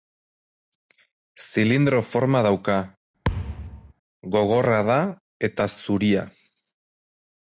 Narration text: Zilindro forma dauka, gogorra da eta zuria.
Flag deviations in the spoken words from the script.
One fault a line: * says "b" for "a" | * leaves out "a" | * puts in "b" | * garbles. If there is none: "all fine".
all fine